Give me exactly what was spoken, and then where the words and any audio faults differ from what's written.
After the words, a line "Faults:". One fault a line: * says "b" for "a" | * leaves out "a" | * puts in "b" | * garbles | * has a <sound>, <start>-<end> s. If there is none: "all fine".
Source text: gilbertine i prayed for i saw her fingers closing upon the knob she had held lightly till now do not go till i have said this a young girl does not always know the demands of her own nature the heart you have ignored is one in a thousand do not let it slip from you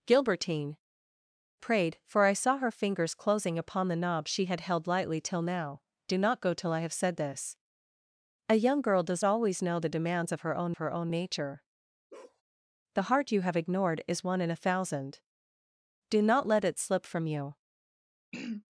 gilbertine prayed for i saw her fingers closing upon the knob she had held lightly till now do not go till i have said this a young girl does always know the demands of her own her own nature the heart you have ignored is one in a thousand do not let it slip from you
Faults:
* leaves out "i"
* leaves out "not"
* puts in "her own"
* has a bark, 12.1-12.4 s
* has a throat clearing, 18.3-18.6 s